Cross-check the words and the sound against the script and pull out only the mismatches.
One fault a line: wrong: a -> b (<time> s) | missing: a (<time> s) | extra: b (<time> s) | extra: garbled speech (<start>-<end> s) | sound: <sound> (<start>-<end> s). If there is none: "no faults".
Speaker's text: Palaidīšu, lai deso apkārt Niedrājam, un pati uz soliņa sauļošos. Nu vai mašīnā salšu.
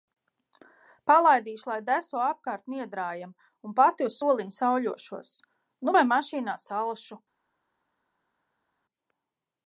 no faults